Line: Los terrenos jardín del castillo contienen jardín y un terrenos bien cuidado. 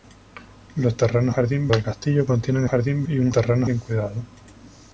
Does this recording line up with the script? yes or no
yes